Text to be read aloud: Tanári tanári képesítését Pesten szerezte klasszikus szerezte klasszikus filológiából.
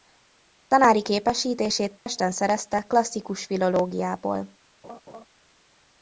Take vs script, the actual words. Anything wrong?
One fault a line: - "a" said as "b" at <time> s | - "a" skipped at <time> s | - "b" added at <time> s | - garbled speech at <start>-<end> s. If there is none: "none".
- "tanári" skipped at 1.1 s
- "szerezte klasszikus" skipped at 3.4 s